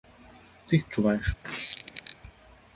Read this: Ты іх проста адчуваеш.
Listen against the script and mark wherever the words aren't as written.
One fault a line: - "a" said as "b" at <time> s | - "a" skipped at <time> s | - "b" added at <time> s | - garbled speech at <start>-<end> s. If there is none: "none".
- "проста" skipped at 0.9 s